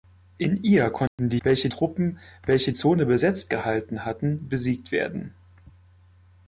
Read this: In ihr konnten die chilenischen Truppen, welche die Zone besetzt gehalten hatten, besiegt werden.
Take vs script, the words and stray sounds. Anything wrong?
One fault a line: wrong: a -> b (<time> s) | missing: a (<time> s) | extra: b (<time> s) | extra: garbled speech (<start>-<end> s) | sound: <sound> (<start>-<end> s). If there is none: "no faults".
sound: dropout (1.1-1.2 s)
wrong: chilenischen -> welche (1.4 s)
missing: die (2.7 s)